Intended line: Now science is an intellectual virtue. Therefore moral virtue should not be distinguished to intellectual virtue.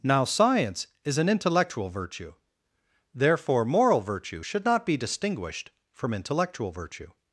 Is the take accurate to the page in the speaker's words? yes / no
no